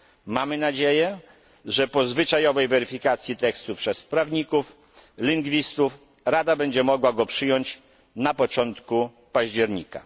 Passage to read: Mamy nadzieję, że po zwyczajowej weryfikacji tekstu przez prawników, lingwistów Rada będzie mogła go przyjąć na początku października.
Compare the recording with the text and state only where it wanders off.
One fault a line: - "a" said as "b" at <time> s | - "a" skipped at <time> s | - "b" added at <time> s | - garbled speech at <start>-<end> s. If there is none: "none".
none